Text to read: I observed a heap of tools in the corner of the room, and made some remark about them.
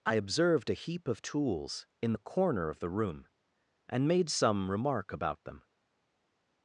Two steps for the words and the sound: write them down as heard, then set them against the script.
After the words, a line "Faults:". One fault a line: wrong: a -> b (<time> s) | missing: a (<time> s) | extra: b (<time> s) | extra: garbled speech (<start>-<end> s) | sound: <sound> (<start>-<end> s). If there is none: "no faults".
I observed a heap of tools in the corner of the room, and made some remark about them.
Faults:
no faults